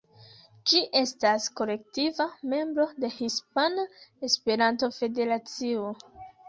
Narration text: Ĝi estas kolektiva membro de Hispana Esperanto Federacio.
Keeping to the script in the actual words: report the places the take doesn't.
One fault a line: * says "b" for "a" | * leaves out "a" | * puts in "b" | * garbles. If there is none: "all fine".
all fine